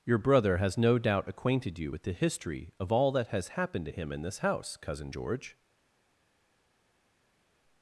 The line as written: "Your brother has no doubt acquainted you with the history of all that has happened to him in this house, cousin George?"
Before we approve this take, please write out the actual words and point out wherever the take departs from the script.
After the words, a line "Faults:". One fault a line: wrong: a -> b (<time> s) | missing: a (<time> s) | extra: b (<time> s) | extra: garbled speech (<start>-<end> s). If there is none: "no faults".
"Your brother has no doubt acquainted you with the history of all that has happened to him in this house, cousin George?"
Faults:
no faults